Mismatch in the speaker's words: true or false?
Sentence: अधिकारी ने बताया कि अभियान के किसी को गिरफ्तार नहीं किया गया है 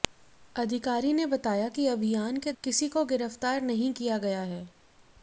false